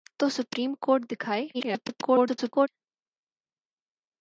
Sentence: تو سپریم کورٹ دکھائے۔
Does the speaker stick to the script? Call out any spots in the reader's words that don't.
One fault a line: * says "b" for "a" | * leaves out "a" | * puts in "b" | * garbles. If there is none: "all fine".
* garbles